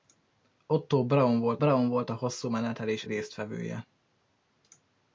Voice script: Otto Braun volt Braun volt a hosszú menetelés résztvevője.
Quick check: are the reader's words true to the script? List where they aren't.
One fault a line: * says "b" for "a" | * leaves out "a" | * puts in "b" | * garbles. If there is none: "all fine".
all fine